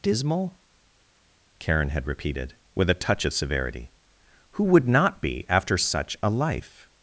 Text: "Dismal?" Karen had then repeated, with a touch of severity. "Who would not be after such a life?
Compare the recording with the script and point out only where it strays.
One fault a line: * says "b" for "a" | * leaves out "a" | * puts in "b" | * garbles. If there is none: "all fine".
* leaves out "then"